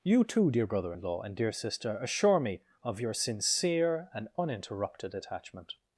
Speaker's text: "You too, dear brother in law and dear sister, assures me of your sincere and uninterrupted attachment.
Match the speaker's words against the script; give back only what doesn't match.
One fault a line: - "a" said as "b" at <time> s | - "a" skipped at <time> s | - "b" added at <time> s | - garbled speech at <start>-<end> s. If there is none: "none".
- "assures" said as "assure" at 2.0 s